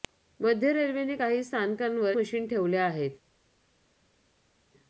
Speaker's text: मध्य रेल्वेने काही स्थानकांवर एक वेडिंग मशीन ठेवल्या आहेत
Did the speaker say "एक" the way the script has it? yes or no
no